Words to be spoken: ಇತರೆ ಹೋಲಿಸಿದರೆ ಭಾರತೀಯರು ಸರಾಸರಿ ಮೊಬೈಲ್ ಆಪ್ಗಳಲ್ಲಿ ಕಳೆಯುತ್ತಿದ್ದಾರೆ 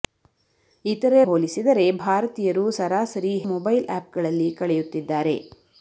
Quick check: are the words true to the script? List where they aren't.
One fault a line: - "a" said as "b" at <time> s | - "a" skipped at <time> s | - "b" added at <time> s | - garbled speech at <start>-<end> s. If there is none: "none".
none